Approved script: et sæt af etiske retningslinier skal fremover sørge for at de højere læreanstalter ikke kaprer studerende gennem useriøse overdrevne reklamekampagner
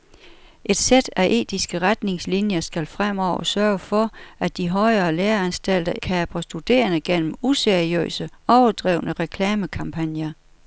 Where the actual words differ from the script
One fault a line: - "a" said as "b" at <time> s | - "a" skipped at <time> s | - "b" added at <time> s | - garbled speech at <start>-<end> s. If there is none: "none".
- "ikke" skipped at 5.9 s